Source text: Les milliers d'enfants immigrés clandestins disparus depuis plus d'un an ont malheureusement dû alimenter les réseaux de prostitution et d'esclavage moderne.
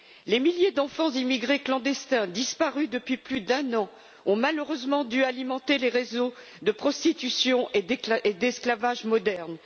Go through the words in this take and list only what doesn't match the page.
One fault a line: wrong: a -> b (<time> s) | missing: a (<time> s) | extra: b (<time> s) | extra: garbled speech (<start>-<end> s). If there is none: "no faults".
no faults